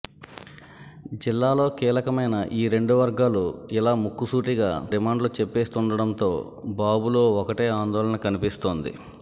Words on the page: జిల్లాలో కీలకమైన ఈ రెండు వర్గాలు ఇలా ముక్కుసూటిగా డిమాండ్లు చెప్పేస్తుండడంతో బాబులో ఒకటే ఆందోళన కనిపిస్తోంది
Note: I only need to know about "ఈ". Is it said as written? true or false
true